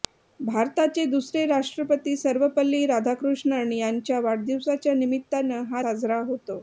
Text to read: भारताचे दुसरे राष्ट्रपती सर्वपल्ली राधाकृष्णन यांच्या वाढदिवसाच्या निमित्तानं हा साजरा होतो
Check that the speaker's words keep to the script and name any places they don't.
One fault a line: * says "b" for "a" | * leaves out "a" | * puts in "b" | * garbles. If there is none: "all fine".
all fine